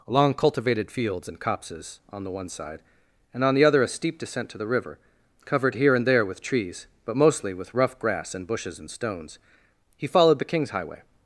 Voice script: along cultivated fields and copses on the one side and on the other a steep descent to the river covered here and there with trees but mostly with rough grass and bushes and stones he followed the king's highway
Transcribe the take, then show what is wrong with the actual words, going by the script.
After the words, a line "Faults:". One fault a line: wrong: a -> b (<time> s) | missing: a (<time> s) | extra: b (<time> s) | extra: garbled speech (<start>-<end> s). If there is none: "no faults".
along cultivated fields and copses on the one side and on the other a steep descent to the river covered here and there with trees but mostly with rough grass and bushes and stones he followed the king's highway
Faults:
no faults